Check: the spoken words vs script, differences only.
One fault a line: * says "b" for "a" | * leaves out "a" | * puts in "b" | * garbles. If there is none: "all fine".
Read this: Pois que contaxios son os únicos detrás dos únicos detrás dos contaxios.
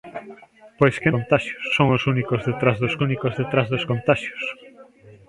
all fine